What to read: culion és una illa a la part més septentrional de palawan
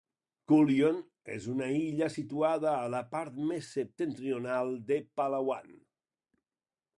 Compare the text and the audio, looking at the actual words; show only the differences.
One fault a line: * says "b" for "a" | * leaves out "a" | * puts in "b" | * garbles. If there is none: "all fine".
* puts in "situada"